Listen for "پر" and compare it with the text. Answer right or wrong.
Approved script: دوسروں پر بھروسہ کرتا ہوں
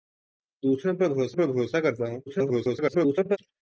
right